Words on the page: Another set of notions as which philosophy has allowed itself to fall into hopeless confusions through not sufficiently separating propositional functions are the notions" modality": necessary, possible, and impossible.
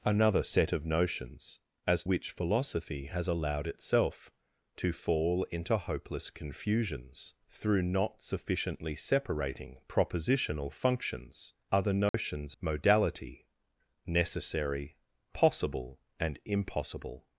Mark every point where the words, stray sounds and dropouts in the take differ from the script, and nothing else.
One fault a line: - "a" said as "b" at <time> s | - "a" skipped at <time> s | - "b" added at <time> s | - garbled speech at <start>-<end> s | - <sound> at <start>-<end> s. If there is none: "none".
- dropout at 12.1-12.1 s